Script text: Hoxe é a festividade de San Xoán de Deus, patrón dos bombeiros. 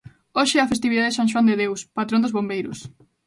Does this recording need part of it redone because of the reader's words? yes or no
no